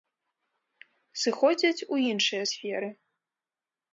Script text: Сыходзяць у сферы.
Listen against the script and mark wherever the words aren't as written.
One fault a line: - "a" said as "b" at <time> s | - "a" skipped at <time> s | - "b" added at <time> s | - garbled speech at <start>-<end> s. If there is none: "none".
- "іншыя" added at 2.1 s